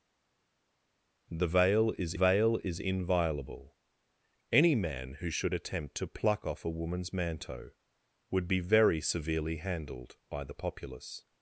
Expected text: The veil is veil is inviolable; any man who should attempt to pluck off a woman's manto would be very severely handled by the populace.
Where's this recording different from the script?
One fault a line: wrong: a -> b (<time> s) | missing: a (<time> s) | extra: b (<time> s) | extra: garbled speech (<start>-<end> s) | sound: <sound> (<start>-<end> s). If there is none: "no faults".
no faults